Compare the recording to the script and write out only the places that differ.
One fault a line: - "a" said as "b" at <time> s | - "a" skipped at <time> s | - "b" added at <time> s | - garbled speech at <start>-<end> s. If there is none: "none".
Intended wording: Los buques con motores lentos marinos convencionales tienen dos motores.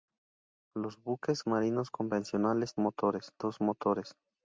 - "con motores lentos" skipped at 1.4 s
- "tienen" said as "motores" at 2.8 s